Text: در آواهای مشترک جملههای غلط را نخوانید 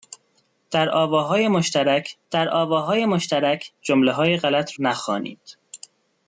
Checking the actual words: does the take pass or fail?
fail